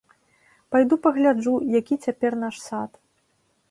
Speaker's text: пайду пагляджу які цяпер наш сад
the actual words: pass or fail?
pass